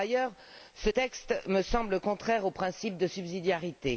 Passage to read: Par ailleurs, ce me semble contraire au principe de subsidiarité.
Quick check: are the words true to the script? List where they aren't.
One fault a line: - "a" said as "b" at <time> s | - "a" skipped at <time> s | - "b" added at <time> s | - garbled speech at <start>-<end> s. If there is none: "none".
- "texte" added at 0.8 s